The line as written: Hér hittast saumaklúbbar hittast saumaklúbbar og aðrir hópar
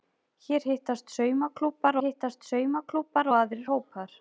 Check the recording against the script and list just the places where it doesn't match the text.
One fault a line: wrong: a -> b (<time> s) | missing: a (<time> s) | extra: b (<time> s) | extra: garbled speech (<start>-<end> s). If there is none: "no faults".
no faults